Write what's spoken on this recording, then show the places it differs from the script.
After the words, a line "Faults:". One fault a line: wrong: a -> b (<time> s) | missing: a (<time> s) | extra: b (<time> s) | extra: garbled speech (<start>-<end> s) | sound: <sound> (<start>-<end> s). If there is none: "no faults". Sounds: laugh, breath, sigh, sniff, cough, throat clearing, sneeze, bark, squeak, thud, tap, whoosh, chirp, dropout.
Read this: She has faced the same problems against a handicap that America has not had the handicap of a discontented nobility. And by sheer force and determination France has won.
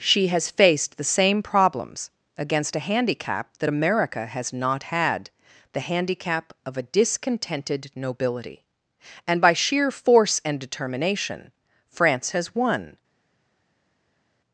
She has faced the same problems against a handicap that America has not had the handicap of a discontented nobility. And by sheer force and determination France has won.
Faults:
no faults